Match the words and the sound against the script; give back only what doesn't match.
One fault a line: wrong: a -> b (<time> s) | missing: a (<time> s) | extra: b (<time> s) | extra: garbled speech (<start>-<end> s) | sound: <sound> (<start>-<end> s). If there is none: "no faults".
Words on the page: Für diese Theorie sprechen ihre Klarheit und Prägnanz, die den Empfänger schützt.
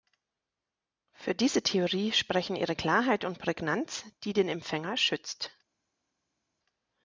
no faults